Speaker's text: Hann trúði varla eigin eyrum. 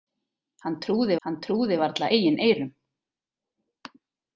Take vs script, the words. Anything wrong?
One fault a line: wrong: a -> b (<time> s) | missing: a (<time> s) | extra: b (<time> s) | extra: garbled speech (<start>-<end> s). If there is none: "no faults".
extra: hann trúði (1.2 s)